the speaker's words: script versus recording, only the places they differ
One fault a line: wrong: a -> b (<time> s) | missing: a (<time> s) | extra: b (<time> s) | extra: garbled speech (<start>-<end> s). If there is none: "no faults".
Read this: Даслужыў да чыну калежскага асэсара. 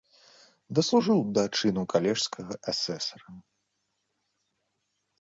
no faults